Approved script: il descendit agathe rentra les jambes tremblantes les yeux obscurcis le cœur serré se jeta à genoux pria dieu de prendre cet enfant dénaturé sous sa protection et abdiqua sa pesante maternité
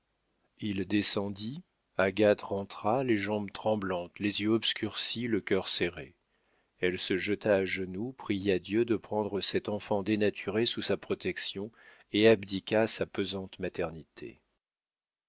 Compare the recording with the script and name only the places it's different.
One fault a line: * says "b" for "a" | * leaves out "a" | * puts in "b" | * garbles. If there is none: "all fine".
* puts in "elle"